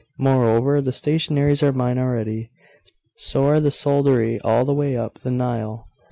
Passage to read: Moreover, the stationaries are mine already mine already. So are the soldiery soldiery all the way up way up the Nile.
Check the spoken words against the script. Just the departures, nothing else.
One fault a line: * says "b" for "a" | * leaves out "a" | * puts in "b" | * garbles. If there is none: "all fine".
* leaves out "mine already"
* leaves out "soldiery"
* leaves out "way up"